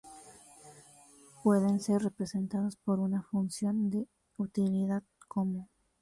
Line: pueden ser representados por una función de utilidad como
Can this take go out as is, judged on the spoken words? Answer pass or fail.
pass